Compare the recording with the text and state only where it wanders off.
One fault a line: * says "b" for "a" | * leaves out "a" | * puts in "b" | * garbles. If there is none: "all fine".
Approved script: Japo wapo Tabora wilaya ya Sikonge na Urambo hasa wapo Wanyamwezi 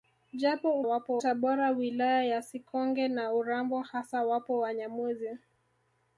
all fine